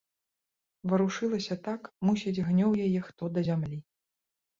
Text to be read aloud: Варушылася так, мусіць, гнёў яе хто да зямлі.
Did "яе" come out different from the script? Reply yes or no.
no